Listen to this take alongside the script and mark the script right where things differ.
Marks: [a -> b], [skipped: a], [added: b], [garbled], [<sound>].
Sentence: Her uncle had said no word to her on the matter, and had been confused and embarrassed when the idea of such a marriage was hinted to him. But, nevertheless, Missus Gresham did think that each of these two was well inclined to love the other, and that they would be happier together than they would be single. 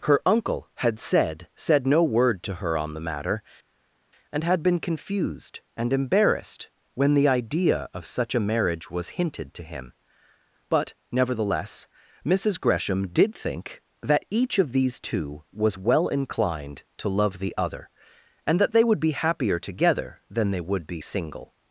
Her uncle had said [added: said] no word to her on the matter, and had been confused and embarrassed when the idea of such a marriage was hinted to him. But, nevertheless, Missus Gresham did think that each of these two was well inclined to love the other, and that they would be happier together than they would be single.